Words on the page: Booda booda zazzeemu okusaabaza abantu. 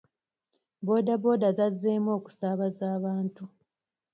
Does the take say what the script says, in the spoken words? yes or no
yes